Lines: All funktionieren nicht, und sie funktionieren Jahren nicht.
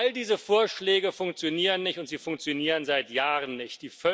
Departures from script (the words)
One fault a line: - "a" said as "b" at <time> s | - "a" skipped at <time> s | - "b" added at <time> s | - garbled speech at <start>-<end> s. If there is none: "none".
- "diese Vorschläge" added at 0.1 s
- "seit" added at 2.9 s